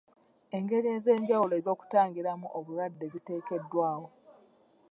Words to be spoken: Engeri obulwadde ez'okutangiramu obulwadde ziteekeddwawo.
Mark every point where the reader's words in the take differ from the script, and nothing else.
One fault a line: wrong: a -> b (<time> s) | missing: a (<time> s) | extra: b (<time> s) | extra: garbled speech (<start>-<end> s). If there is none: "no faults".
wrong: obulwadde -> ez'enjawulo (1.0 s)